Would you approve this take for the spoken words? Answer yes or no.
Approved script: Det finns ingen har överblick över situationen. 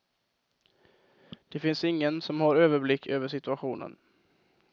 no